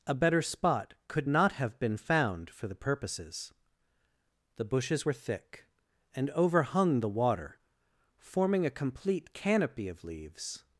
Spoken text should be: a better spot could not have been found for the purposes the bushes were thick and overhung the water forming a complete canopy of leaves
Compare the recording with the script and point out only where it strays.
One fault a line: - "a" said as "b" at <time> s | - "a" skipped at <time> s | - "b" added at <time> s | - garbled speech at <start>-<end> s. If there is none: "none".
none